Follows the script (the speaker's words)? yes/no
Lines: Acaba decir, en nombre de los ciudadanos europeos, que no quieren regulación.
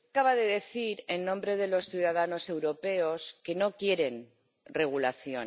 no